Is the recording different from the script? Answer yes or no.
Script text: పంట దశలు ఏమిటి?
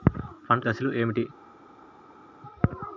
no